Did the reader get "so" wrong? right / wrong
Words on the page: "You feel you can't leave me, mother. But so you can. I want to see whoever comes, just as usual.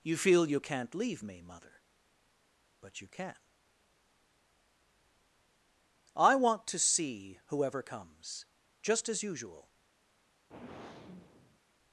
wrong